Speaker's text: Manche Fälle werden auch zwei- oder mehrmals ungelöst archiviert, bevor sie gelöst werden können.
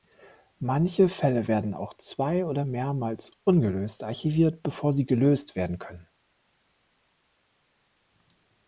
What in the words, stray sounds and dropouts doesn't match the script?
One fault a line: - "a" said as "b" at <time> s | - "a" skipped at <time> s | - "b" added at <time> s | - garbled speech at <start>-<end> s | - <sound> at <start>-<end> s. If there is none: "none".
none